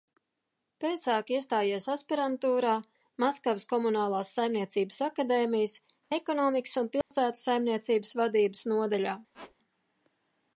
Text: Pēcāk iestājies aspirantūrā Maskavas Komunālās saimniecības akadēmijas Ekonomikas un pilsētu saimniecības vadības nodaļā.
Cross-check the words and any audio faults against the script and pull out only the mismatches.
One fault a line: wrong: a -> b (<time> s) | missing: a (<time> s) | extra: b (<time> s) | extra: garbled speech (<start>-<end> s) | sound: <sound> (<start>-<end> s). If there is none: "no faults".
sound: dropout (7.0-7.1 s)
sound: squeak (9.3-9.5 s)